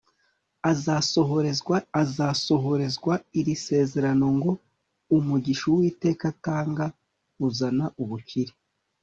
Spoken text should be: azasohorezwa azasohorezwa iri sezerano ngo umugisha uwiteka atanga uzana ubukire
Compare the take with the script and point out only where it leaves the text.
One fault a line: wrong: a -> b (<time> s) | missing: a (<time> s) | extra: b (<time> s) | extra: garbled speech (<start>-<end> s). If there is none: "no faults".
no faults